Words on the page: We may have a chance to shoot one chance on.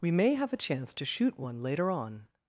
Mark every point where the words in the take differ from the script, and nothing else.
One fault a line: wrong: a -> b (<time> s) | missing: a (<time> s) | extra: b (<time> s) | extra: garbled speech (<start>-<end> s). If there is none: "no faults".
wrong: chance -> later (1.6 s)